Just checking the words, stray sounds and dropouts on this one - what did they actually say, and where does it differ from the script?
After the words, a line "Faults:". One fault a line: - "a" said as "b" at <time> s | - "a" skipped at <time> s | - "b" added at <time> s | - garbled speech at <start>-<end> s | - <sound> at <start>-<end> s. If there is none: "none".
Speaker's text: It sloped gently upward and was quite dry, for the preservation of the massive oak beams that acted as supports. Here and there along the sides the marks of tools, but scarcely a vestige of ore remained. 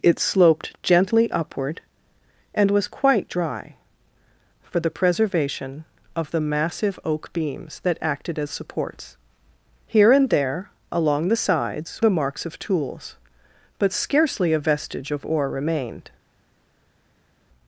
It sloped gently upward and was quite dry, for the preservation of the massive oak beams that acted as supports. Here and there along the sides the marks of tools, but scarcely a vestige of ore remained.
Faults:
none